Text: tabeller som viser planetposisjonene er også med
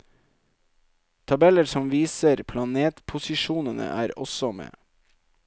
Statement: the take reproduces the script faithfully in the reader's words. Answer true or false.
true